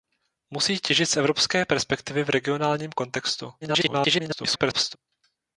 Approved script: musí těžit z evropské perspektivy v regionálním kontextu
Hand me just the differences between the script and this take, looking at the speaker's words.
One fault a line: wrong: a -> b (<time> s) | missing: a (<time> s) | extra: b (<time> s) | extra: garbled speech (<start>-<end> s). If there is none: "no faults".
extra: garbled speech (3.6-5.0 s)